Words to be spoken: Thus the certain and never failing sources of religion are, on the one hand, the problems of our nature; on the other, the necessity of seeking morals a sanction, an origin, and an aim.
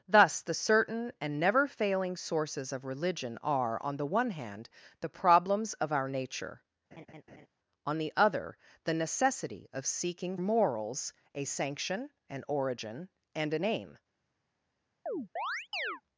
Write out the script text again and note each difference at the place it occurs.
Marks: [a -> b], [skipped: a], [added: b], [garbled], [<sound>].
Thus the certain and never failing sources of religion are, on the one hand, the problems of our nature; [laugh] on the other, the necessity of seeking morals a sanction, an origin, and an aim. [chirp]